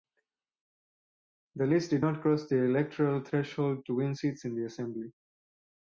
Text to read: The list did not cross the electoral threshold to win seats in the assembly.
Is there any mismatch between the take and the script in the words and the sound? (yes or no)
no